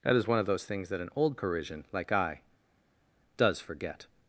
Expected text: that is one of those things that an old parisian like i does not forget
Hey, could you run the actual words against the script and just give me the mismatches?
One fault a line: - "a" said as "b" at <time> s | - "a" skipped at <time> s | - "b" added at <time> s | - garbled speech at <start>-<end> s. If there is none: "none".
- "not" skipped at 3.6 s